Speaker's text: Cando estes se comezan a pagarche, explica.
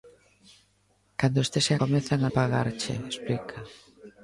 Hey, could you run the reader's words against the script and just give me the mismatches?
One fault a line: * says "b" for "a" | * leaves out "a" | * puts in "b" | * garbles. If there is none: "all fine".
all fine